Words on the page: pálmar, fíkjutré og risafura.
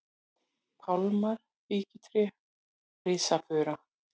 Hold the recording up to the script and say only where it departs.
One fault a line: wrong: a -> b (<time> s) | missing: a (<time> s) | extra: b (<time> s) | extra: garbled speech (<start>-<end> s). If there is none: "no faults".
missing: og (2.2 s)